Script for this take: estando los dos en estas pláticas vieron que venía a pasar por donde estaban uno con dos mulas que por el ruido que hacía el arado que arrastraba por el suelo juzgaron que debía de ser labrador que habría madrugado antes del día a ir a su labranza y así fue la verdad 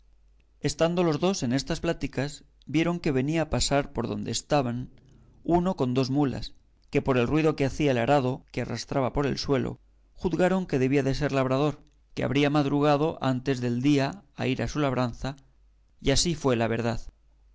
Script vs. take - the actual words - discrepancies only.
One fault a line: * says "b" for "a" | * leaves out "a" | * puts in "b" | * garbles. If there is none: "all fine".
all fine